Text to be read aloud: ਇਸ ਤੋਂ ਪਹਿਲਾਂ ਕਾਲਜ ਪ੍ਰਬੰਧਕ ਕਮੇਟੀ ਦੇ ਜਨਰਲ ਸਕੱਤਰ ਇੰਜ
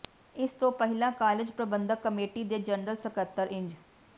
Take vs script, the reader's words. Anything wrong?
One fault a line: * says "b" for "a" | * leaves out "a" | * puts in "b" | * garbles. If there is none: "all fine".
all fine